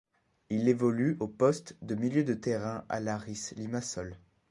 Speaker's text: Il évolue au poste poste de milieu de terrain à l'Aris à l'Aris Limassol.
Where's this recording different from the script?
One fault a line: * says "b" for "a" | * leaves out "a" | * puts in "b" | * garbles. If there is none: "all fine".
* leaves out "poste"
* leaves out "à l'Aris"